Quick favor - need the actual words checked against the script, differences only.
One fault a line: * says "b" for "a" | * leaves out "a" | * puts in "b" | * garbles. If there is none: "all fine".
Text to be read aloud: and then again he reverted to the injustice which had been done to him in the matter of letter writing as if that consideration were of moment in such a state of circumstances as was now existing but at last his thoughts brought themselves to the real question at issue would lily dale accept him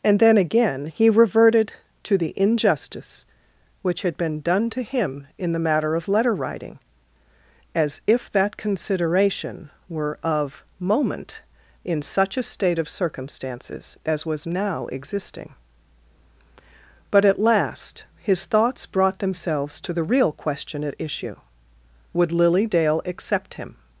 all fine